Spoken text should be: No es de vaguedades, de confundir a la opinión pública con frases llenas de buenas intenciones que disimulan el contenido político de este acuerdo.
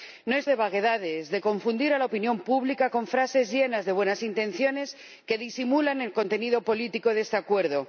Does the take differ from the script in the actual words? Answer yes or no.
no